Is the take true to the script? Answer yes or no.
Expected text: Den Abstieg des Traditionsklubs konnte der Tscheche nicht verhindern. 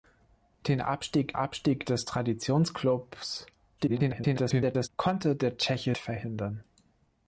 no